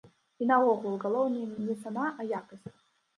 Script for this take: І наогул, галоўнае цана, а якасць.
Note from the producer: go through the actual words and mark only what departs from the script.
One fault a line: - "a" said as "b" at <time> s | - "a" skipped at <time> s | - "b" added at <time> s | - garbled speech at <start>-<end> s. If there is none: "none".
- "не" added at 1.7 s